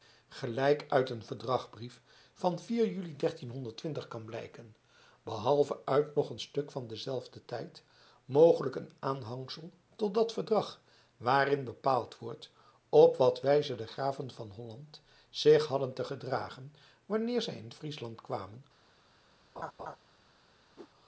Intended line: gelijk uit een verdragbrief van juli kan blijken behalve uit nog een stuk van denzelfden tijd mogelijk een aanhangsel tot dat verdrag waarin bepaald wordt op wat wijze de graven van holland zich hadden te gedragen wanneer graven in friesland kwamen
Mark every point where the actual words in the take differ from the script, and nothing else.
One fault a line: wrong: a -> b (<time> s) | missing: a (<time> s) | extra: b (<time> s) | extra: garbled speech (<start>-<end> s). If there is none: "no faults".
wrong: graven -> zij (17.4 s)